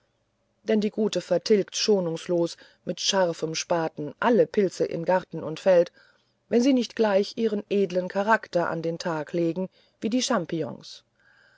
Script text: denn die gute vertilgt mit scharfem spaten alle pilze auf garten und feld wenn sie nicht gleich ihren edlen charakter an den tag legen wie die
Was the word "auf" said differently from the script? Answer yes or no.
yes